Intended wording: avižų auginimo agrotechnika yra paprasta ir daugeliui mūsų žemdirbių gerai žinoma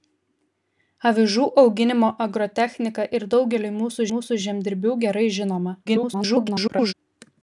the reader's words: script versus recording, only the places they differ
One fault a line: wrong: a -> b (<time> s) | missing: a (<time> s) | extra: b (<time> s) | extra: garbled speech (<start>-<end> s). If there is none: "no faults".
missing: yra paprasta (3.0 s)
extra: mūsų (4.1 s)
extra: garbled speech (5.9-6.9 s)